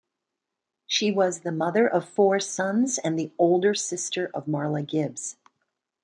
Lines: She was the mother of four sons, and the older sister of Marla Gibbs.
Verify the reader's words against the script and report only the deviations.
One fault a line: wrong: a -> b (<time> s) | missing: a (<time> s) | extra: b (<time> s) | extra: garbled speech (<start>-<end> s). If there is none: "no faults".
no faults